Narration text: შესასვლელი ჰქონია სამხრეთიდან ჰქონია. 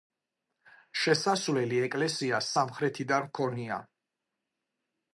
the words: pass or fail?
fail